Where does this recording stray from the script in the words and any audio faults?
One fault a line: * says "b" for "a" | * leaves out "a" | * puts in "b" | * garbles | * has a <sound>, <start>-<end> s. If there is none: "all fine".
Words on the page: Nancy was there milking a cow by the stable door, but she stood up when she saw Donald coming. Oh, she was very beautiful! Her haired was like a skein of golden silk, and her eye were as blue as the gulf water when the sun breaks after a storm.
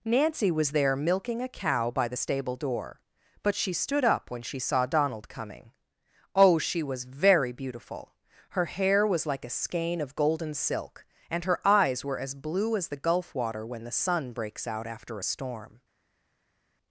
* says "hair" for "haired"
* says "eyes" for "eye"
* puts in "out"